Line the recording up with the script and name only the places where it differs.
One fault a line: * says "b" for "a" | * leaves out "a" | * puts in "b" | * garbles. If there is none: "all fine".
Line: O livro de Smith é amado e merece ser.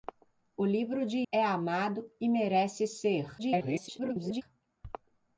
* leaves out "Smith"
* garbles